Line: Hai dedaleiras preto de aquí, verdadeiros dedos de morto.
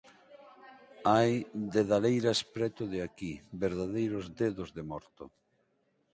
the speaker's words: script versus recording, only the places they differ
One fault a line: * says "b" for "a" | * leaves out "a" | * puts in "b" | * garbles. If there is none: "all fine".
all fine